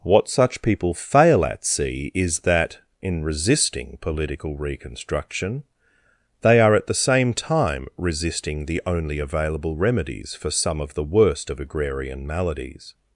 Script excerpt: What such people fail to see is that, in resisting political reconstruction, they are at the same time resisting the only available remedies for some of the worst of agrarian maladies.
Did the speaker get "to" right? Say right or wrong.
wrong